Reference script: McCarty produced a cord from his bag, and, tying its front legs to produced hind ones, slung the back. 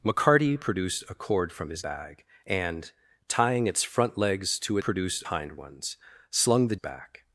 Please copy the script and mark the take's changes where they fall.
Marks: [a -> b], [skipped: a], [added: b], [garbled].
McCarty produced a cord from his bag, and, tying its front legs to produced hind ones, slung the back.